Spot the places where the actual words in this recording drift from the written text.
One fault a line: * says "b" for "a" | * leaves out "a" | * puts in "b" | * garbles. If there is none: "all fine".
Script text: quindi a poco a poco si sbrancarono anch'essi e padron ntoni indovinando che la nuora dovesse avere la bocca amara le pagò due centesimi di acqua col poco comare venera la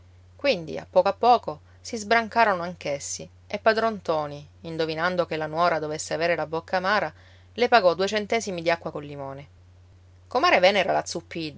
* says "limone" for "poco"